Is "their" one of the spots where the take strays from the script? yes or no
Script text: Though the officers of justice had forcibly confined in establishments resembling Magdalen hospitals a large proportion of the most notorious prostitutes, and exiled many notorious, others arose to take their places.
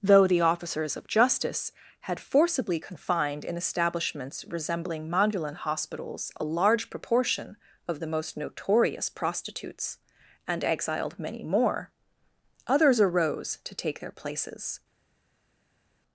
no